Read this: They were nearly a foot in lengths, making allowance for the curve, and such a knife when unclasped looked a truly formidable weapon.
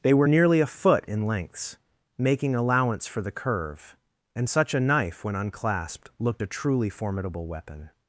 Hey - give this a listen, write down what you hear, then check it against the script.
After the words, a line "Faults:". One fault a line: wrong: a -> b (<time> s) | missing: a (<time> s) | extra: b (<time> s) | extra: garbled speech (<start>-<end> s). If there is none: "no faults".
They were nearly a foot in lengths, making allowance for the curve, and such a knife when unclasped looked a truly formidable weapon.
Faults:
no faults